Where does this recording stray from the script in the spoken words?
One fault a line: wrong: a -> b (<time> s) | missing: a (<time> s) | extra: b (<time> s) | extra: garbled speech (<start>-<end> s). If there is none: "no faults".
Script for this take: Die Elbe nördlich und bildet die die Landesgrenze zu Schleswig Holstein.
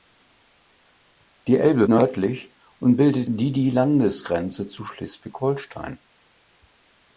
no faults